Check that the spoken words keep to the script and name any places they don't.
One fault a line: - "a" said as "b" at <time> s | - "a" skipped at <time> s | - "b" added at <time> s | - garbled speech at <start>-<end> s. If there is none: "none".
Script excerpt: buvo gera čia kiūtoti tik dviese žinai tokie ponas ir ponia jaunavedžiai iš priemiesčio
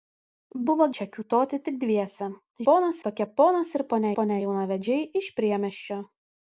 - "gera" skipped at 0.8 s
- "žinai" said as "ponas" at 2.7 s
- "ponia" added at 4.2 s